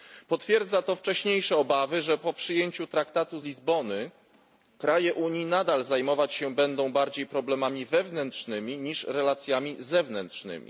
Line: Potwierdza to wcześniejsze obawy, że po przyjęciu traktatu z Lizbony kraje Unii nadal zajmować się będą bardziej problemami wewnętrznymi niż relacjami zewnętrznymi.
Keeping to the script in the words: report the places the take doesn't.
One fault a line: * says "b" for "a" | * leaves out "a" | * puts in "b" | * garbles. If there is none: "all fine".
* leaves out "z"